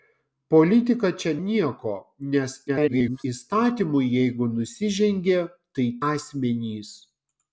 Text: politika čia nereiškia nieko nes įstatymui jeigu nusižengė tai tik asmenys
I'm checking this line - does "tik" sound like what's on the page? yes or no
no